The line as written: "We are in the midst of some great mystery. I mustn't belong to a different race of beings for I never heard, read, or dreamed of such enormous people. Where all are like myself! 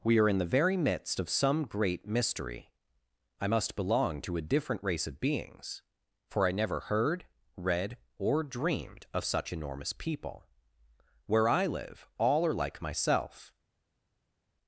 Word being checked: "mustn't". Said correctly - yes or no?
no